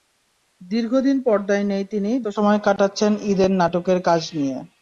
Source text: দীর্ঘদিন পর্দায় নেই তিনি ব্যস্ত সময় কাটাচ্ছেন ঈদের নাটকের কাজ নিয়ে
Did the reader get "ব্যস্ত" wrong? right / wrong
wrong